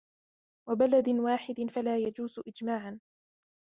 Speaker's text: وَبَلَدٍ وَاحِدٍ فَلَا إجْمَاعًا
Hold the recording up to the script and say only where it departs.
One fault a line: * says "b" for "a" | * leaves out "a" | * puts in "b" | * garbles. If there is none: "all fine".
* puts in "يَجُوزُ"